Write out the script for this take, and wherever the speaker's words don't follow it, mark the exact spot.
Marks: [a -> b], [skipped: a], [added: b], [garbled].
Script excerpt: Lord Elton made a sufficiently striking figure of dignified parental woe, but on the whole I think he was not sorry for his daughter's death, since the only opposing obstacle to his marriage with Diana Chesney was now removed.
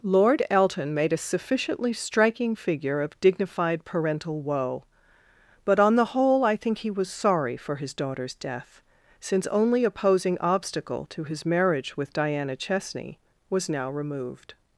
Lord Elton made a sufficiently striking figure of dignified parental woe, but on the whole I think he was [skipped: not] sorry for his daughter's death, since [skipped: the] only opposing obstacle to his marriage with Diana Chesney was now removed.